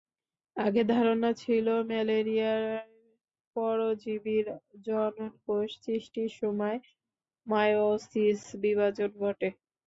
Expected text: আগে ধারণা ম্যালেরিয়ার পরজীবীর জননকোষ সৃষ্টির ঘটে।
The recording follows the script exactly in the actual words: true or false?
false